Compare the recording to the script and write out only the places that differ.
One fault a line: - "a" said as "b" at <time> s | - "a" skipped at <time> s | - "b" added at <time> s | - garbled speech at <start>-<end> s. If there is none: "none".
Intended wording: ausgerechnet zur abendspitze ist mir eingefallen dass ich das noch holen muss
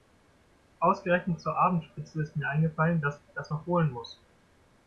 none